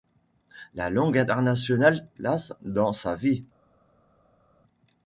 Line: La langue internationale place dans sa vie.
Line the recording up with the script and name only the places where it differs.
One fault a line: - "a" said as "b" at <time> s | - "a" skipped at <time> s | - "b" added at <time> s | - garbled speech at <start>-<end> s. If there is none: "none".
none